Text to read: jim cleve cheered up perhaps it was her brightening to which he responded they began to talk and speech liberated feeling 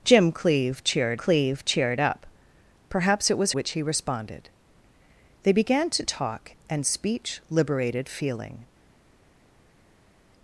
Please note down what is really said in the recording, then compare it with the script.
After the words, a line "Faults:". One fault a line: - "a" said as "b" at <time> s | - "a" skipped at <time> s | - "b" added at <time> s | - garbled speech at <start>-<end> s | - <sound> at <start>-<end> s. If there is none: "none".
jim cleve cheered cleve cheered up perhaps it was which he responded they began to talk and speech liberated feeling
Faults:
- "cleve cheered" added at 1.1 s
- "her brightening to" skipped at 3.5 s